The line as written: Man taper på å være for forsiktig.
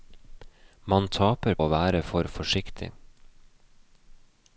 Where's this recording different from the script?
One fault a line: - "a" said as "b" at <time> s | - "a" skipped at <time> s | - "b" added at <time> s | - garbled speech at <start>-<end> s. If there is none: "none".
- "på" skipped at 1.6 s